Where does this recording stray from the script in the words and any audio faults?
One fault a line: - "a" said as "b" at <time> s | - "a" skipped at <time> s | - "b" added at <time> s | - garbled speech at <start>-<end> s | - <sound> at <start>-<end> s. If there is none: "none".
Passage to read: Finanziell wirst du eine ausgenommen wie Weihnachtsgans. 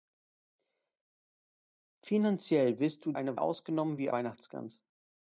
none